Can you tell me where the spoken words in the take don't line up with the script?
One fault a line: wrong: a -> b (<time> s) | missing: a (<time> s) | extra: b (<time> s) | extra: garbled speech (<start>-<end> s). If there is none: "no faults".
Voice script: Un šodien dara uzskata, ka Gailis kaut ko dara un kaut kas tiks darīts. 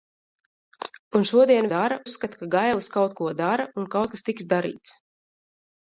no faults